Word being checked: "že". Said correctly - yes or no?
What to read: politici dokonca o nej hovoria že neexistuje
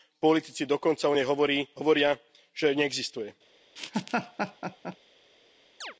yes